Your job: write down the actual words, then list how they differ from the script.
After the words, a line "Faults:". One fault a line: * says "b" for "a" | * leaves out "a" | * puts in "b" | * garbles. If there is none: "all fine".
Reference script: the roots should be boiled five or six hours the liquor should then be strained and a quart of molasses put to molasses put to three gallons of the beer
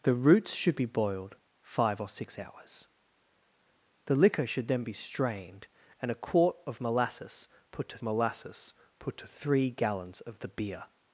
the roots should be boiled five or six hours the liquor should then be strained and a quart of molasses put to molasses put to three gallons of the beer
Faults:
all fine